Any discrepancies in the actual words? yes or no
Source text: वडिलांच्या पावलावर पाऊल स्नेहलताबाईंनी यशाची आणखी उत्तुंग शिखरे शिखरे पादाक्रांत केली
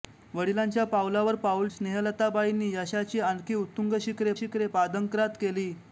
no